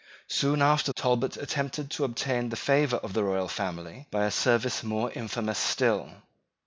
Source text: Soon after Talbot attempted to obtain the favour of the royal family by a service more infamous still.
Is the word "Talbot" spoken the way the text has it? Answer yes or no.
yes